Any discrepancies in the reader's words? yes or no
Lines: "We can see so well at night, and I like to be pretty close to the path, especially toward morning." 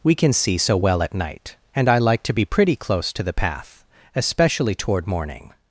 no